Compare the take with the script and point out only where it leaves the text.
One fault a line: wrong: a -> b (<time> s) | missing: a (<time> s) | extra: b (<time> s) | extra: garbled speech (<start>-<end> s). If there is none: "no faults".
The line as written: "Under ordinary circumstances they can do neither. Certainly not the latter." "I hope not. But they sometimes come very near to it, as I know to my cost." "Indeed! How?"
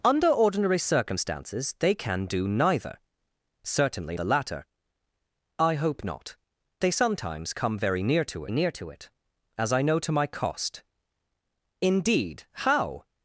missing: not (4.2 s)
missing: But (6.3 s)
extra: near to (8.5 s)